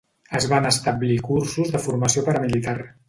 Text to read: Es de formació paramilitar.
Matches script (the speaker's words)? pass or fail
fail